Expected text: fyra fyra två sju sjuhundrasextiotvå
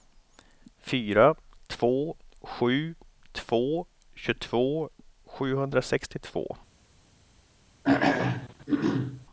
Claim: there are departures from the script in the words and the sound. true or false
true